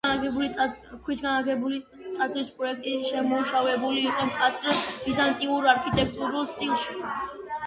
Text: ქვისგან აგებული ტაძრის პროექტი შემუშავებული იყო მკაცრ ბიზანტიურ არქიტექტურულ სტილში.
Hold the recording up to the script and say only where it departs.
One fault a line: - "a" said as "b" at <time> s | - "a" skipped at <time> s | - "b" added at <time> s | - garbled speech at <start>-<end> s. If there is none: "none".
none